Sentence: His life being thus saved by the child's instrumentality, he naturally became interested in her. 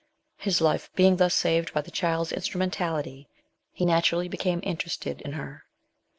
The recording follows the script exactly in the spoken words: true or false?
true